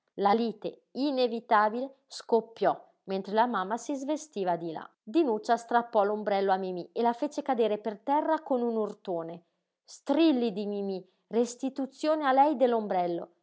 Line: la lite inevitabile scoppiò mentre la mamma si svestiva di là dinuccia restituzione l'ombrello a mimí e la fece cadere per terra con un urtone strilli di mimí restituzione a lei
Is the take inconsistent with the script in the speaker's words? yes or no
yes